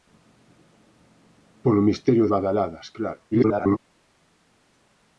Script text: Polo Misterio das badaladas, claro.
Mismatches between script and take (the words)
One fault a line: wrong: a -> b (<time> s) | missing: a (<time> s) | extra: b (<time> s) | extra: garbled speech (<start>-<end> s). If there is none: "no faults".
missing: das (2.2 s)
extra: garbled speech (3.3-3.8 s)